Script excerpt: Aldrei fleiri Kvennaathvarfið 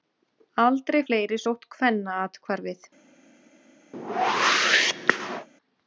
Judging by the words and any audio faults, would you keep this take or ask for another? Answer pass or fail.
fail